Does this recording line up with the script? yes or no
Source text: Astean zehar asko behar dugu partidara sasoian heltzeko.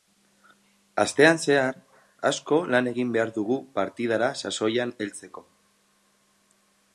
no